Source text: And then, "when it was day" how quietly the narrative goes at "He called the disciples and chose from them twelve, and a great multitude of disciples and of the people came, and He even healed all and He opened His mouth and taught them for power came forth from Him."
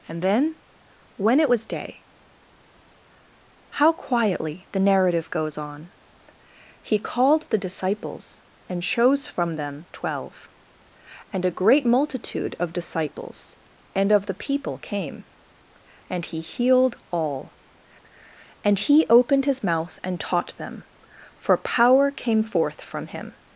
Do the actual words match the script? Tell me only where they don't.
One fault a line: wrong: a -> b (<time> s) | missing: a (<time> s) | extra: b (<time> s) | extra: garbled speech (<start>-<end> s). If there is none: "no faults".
wrong: at -> on (5.6 s)
missing: even (16.4 s)